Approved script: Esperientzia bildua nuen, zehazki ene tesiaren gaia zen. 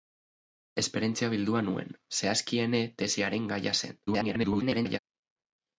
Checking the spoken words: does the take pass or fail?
fail